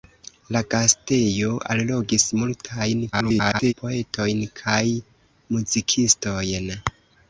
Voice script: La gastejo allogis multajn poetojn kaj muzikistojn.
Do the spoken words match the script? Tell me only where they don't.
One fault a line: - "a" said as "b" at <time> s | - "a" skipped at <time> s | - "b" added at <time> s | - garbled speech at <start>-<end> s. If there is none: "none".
- garbled speech at 3.1-3.7 s